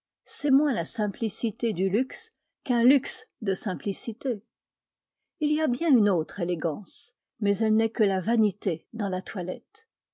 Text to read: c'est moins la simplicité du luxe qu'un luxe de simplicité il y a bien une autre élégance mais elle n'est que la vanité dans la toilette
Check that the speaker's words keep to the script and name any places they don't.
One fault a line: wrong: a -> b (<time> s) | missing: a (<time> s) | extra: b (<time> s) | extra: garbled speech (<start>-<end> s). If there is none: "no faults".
no faults